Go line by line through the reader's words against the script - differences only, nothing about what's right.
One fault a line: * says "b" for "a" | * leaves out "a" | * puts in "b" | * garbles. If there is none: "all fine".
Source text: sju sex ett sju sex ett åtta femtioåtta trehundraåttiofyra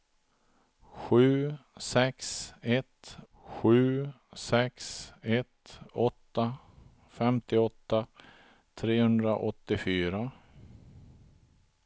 all fine